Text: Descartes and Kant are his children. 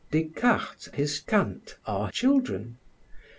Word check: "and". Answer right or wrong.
wrong